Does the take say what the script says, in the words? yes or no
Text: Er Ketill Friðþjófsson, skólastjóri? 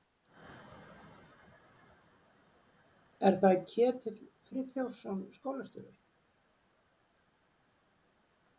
no